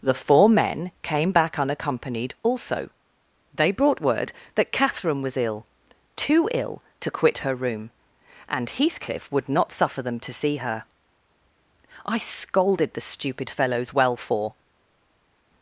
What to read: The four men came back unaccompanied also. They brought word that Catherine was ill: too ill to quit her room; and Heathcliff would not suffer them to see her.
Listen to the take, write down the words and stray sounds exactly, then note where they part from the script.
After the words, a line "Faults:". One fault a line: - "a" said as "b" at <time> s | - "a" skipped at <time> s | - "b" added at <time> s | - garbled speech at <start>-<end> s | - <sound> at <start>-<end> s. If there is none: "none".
The four men came back unaccompanied also. They brought word that Catherine was ill: too ill to quit her room; and Heathcliff would not suffer them to see her. I scolded the stupid fellows well for
Faults:
- "I scolded the stupid fellows well for" added at 12.1 s